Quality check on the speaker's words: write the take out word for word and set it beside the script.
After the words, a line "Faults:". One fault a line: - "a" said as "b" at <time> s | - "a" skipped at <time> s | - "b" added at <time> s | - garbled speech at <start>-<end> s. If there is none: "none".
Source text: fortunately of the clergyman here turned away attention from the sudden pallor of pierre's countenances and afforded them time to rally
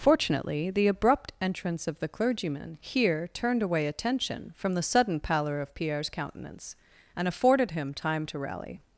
fortunately the abrupt entrance of the clergyman here turned away attention from the sudden pallor of pierre's countenance and afforded him time to rally
Faults:
- "the abrupt entrance" added at 0.7 s
- "countenances" said as "countenance" at 6.1 s
- "them" said as "him" at 7.7 s